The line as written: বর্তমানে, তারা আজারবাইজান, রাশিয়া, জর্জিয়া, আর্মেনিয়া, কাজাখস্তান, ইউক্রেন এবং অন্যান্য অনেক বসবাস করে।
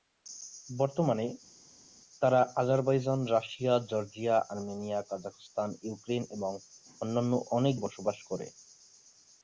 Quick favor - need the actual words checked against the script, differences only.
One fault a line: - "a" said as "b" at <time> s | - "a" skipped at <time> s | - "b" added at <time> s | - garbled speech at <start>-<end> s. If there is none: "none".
none